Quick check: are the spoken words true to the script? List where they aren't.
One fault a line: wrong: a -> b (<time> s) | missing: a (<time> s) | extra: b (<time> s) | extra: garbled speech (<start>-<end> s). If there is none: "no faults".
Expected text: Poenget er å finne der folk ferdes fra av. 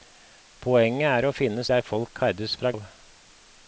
no faults